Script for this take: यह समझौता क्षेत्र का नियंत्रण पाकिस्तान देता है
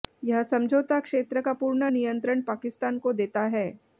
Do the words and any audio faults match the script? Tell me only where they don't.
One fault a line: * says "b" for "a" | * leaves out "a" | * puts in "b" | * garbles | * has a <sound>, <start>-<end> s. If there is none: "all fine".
* puts in "पूर्ण"
* puts in "को"